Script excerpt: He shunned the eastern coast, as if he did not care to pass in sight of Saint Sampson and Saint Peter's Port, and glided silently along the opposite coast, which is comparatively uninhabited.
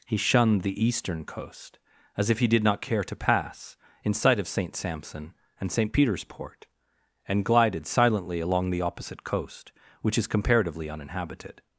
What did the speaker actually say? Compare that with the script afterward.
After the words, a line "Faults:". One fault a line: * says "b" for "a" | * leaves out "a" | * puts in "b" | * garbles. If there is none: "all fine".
He shunned the eastern coast, as if he did not care to pass in sight of Saint Sampson and Saint Peter's Port, and glided silently along the opposite coast, which is comparatively uninhabited.
Faults:
all fine